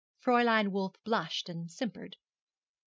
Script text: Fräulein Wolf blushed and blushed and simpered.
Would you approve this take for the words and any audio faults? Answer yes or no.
no